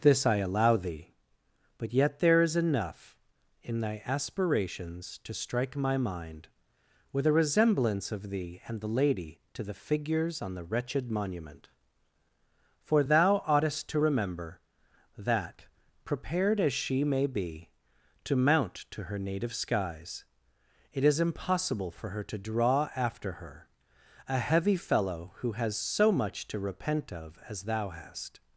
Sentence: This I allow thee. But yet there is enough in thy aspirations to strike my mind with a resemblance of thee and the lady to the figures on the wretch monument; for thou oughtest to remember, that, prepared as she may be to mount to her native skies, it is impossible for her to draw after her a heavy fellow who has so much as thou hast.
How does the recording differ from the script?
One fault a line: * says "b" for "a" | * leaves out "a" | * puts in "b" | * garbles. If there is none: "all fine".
* says "wretched" for "wretch"
* puts in "to repent of"